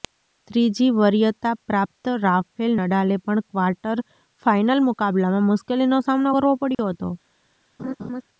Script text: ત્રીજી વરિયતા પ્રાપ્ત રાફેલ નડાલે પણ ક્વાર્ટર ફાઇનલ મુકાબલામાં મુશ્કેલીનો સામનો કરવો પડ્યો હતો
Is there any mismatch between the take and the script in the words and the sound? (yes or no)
yes